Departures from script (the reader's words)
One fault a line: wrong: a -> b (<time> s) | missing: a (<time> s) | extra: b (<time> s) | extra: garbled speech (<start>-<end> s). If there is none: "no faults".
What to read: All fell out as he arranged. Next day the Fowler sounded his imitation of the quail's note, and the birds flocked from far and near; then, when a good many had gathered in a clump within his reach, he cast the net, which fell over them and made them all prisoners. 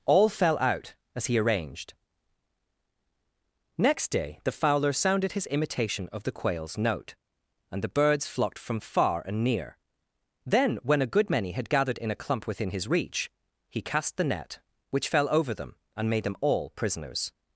no faults